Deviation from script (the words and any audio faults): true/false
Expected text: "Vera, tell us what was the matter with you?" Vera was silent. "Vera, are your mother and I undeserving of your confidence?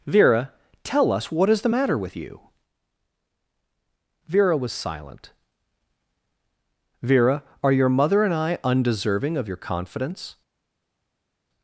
true